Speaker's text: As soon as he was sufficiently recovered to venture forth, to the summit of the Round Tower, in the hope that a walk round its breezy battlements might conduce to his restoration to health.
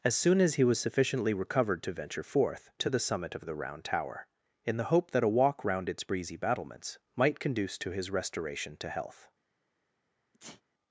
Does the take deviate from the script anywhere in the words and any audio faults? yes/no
yes